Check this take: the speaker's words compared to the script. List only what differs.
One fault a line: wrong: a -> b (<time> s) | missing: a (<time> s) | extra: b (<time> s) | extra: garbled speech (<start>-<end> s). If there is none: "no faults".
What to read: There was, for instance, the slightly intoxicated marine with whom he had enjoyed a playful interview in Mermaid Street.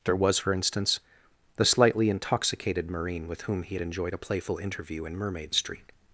no faults